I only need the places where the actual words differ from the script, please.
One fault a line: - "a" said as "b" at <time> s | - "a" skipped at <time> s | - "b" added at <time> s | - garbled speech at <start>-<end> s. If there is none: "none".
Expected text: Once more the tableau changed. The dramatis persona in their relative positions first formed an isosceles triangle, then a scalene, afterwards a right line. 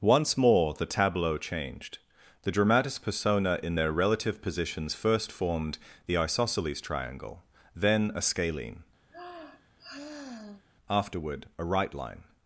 - "an" said as "the" at 6.1 s
- "afterwards" said as "afterward" at 10.9 s